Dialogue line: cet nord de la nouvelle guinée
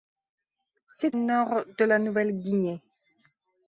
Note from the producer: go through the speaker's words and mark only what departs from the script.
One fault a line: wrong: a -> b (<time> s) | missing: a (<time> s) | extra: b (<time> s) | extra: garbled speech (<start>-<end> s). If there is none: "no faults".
no faults